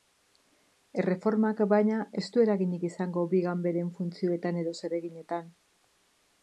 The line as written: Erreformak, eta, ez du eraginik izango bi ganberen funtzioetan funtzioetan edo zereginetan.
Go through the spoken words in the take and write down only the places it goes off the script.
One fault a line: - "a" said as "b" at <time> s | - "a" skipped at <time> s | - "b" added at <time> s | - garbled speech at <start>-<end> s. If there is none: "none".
- "eta" said as "baina" at 1.7 s
- "funtzioetan" skipped at 4.6 s